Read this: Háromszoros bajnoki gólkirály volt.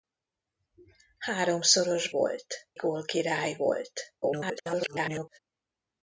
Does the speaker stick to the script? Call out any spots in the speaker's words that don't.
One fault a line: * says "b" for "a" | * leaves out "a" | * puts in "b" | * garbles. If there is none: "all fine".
* says "volt" for "bajnoki"
* garbles